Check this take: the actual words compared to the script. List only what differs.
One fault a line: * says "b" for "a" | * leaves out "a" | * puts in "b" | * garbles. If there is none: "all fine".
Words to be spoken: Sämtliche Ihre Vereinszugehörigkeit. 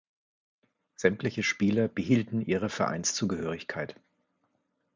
* puts in "Spieler behielten"